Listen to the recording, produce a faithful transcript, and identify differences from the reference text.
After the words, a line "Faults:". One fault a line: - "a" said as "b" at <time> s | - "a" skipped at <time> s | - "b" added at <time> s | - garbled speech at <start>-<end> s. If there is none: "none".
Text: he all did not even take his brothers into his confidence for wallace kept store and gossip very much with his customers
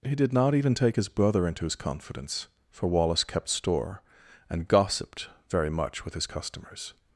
he did not even take his brother into his confidence for wallace kept store and gossiped very much with his customers
Faults:
- "all" skipped at 0.1 s
- "brothers" said as "brother" at 1.1 s
- "gossip" said as "gossiped" at 4.7 s